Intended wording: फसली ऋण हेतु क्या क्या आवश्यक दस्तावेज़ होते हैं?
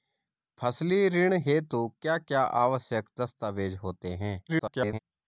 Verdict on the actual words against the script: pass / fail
fail